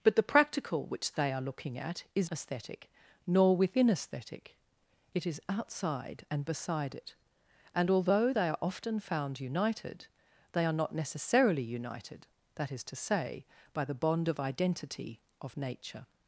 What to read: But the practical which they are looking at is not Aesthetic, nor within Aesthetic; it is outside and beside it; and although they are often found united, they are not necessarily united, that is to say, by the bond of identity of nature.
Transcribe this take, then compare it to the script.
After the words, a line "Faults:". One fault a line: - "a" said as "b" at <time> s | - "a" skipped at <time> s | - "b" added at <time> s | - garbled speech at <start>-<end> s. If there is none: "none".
But the practical which they are looking at is Aesthetic, nor within Aesthetic; it is outside and beside it; and although they are often found united, they are not necessarily united, that is to say, by the bond of identity of nature.
Faults:
- "not" skipped at 2.3 s